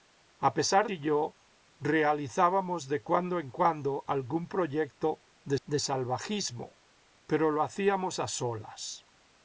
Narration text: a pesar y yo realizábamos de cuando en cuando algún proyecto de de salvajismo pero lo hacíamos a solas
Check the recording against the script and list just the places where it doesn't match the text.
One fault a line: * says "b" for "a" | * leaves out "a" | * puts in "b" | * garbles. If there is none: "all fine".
all fine